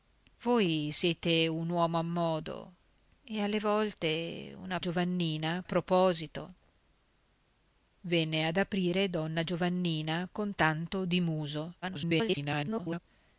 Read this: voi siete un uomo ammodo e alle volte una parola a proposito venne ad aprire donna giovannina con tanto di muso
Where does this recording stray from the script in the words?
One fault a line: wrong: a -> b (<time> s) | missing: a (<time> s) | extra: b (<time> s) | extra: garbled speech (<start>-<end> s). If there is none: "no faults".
wrong: parola -> giovannina (4.8 s)
extra: garbled speech (11.8-13.0 s)